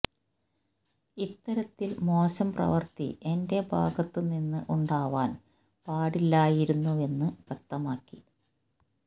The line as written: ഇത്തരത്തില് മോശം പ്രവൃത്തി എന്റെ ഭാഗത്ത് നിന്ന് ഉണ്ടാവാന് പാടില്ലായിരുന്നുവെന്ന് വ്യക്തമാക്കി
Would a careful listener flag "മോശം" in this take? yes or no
no